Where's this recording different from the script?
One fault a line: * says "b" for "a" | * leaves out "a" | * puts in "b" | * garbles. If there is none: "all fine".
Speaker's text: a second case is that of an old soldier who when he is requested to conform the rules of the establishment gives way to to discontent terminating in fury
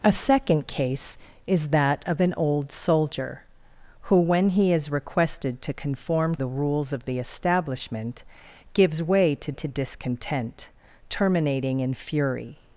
all fine